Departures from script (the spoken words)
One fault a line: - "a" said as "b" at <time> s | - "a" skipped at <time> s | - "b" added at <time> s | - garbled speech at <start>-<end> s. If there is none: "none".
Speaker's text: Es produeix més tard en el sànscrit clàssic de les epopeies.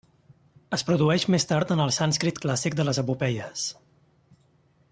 none